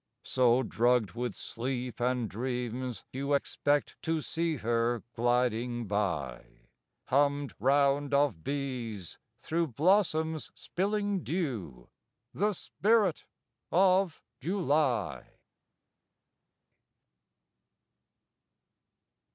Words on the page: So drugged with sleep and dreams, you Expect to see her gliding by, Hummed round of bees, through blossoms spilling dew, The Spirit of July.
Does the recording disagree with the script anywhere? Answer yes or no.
no